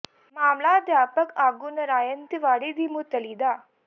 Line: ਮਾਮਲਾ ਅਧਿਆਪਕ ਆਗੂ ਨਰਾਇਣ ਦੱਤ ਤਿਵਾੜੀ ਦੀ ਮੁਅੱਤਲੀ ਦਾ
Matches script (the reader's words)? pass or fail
fail